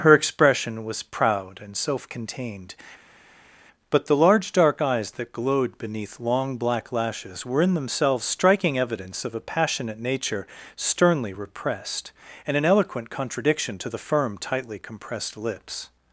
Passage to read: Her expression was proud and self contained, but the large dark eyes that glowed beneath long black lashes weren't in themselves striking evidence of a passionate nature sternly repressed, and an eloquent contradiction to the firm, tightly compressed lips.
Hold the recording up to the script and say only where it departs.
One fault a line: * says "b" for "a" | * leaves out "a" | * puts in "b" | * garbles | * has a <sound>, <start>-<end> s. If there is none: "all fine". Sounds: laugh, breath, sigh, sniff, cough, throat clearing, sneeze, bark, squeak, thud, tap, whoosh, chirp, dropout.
* says "were" for "weren't"